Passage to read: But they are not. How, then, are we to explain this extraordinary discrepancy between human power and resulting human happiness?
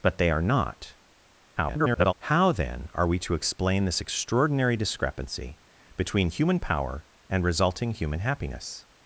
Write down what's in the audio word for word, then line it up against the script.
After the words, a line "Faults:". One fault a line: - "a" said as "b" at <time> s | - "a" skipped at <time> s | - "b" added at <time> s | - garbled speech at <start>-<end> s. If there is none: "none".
But they are not. [garbled] How, then, are we to explain this extraordinary discrepancy between human power and resulting human happiness?
Faults:
- garbled speech at 1.6-2.1 s